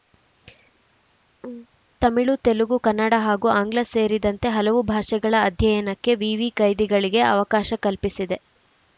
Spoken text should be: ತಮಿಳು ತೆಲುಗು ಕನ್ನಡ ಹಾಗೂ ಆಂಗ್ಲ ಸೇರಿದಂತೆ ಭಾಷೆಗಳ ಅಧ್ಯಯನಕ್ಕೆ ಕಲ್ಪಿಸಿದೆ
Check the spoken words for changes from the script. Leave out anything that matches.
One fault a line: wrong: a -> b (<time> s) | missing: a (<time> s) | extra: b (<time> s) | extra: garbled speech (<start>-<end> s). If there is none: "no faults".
extra: ಹಲವು (4.6 s)
extra: ವಿವಿ ಕೈದಿಗಳಿಗೆ ಅವಕಾಶ (6.2 s)